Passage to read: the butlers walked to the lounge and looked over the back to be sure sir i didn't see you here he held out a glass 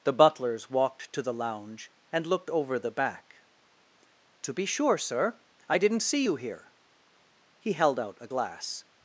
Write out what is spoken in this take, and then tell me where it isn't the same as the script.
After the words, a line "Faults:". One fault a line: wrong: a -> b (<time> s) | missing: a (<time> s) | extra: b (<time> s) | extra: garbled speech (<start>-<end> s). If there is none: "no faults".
the butlers walked to the lounge and looked over the back to be sure sir i didn't see you here he held out a glass
Faults:
no faults